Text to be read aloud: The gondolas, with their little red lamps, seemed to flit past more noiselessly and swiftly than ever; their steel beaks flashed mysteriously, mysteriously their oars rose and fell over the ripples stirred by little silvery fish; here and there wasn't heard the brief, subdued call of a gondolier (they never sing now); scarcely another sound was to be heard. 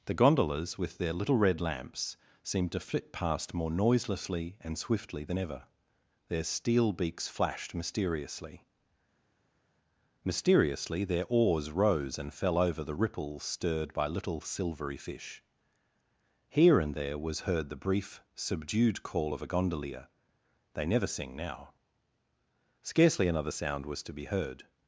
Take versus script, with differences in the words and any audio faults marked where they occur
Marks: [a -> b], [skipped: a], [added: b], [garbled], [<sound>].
The gondolas, with their little red lamps, seemed to flit past more noiselessly and swiftly than ever; their steel beaks flashed mysteriously, mysteriously their oars rose and fell over the ripples stirred by little silvery fish; here and there [wasn't -> was] heard the brief, subdued call of a gondolier (they never sing now); scarcely another sound was to be heard.